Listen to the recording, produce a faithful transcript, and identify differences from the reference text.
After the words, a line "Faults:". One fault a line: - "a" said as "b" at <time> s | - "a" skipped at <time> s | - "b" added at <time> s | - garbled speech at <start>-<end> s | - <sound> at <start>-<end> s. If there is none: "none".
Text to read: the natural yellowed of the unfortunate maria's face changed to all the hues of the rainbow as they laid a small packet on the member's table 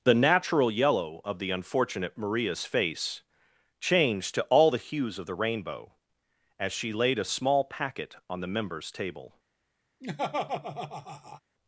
the natural yellow of the unfortunate maria's face changed to all the hues of the rainbow as she laid a small packet on the member's table
Faults:
- "yellowed" said as "yellow" at 0.7 s
- "they" said as "she" at 6.7 s
- laugh at 10.0-11.4 s